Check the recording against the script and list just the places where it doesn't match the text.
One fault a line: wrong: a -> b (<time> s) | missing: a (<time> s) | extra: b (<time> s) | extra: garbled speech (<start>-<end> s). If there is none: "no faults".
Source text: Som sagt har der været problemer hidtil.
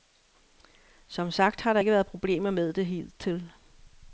extra: ikke (1.8 s)
extra: med det (2.5 s)